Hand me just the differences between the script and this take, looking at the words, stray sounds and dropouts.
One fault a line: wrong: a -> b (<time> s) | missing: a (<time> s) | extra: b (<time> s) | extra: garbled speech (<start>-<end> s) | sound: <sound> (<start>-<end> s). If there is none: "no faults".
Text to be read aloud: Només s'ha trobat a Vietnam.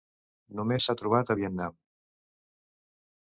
no faults